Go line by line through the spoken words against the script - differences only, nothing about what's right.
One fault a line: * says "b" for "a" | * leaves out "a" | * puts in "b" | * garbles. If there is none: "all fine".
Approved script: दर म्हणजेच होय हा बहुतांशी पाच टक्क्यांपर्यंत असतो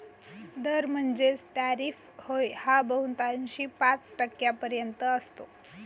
* puts in "टॅरिफ"